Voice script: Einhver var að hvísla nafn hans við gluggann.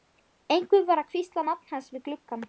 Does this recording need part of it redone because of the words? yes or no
no